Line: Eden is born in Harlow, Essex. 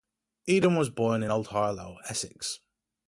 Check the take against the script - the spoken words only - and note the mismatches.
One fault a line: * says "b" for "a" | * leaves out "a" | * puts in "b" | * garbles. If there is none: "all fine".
* says "was" for "is"
* puts in "Old"